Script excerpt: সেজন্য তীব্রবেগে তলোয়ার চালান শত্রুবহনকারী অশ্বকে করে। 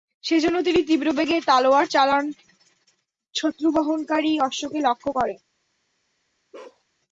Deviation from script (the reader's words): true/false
true